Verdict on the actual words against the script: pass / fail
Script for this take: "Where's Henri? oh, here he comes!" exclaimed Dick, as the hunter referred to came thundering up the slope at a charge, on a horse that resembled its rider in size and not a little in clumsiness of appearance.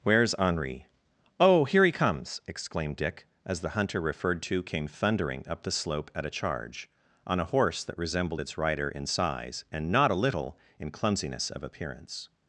pass